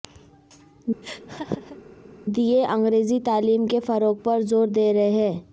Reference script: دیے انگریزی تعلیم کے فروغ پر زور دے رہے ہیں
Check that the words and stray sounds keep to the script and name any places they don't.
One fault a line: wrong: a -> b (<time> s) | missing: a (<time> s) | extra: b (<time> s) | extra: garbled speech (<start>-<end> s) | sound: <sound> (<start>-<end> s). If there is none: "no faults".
sound: laugh (1.0-1.8 s)